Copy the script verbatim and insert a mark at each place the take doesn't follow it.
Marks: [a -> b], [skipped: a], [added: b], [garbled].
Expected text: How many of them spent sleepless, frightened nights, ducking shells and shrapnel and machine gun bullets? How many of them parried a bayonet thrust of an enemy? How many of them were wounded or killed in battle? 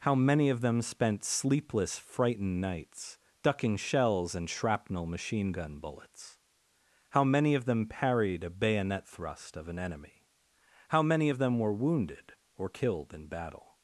How many of them spent sleepless, frightened nights, ducking shells and shrapnel [skipped: and] machine gun bullets? How many of them parried a bayonet thrust of an enemy? How many of them were wounded or killed in battle?